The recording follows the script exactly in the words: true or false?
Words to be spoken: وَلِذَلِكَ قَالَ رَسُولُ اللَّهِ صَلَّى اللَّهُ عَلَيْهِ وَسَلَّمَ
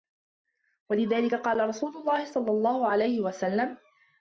true